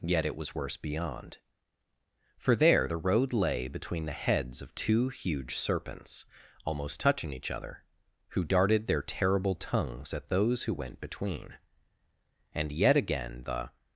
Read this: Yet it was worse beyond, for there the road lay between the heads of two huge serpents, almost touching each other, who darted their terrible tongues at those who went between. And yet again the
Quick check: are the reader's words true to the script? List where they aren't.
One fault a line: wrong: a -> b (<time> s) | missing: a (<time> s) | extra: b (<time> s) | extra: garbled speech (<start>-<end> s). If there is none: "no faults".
no faults